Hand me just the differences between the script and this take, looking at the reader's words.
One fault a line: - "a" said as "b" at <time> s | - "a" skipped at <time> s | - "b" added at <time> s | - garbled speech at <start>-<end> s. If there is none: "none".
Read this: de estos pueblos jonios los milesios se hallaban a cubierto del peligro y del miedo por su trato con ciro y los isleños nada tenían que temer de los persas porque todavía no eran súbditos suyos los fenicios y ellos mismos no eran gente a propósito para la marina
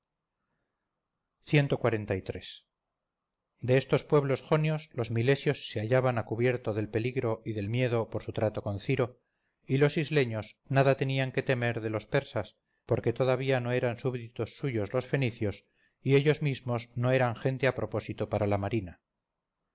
none